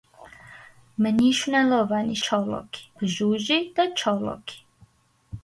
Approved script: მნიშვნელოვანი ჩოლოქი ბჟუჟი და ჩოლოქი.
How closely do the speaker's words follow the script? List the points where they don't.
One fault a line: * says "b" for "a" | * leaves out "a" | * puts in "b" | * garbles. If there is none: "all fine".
all fine